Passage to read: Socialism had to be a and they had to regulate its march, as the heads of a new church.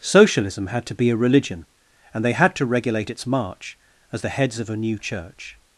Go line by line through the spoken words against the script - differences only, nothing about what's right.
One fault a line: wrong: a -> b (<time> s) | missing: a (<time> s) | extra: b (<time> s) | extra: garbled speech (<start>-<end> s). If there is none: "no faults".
extra: religion (1.1 s)